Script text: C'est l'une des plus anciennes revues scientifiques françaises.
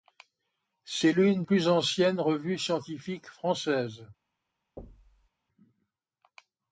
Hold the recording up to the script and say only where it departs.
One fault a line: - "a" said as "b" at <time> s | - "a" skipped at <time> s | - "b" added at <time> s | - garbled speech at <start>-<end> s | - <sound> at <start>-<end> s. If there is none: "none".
- "des" skipped at 1.4 s
- thud at 4.8-5.3 s